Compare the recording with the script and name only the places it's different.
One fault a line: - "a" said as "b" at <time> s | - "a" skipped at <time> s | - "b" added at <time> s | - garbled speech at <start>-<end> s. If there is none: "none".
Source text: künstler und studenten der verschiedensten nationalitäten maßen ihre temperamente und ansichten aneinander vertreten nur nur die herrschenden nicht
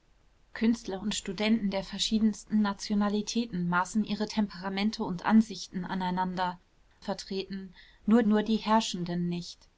none